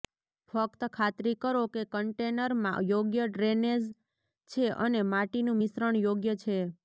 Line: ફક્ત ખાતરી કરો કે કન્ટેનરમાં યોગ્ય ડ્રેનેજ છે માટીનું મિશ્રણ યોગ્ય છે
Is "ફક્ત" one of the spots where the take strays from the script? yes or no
no